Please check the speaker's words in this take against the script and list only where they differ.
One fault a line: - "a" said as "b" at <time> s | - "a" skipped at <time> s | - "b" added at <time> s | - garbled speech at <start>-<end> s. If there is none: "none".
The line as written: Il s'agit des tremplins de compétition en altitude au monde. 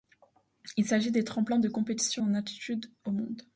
none